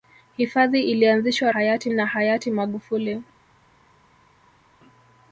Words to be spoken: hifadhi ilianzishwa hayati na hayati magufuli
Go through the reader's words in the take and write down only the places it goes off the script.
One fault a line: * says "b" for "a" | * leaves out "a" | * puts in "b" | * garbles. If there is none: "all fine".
all fine